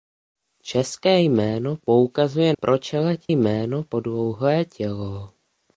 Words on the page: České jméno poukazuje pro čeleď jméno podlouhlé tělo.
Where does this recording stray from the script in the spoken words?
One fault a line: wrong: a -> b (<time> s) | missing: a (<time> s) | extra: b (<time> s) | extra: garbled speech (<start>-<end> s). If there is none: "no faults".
no faults